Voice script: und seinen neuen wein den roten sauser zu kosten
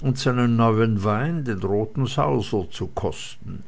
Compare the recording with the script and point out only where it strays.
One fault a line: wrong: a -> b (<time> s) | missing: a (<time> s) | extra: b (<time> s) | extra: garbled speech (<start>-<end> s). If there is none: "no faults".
no faults